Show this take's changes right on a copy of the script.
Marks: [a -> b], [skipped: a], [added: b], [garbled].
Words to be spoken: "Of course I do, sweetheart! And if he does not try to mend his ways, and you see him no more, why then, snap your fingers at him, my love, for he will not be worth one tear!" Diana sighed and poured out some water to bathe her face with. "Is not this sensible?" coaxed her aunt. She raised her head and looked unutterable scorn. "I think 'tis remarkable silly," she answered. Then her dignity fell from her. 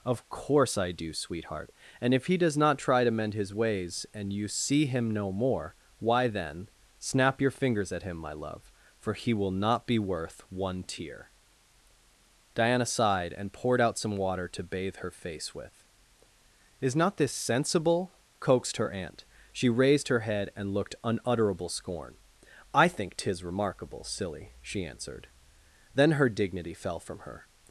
"Of course I do, sweetheart! And if he does not try to mend his ways, and you see him no more, why then, snap your fingers at him, my love, for he will not be worth one tear!" Diana sighed and poured out some water to bathe her face with. "Is not this sensible?" coaxed her aunt. She raised her head and looked unutterable scorn. "I think 'tis remarkable silly," she answered. Then her dignity fell from her.